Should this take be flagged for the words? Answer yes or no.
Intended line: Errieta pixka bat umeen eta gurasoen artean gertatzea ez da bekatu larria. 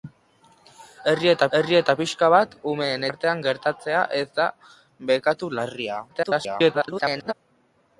yes